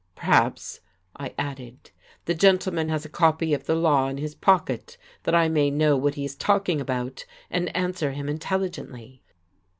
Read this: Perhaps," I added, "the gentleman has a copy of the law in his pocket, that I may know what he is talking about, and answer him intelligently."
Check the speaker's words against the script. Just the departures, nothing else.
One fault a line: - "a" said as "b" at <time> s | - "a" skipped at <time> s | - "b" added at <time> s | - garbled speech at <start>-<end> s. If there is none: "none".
none